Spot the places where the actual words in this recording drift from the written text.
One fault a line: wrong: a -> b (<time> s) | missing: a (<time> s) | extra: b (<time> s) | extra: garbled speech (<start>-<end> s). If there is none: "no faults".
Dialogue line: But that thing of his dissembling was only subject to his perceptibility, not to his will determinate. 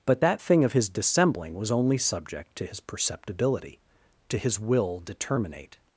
missing: not (3.8 s)